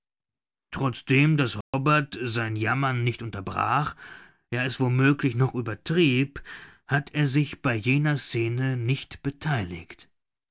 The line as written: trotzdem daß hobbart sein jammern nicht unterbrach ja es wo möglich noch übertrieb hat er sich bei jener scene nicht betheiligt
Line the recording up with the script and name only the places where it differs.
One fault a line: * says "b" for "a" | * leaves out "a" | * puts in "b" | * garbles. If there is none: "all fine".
all fine